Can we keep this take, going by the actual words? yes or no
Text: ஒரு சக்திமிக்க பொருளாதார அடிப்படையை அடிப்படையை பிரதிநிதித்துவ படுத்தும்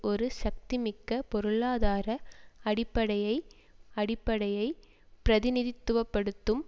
yes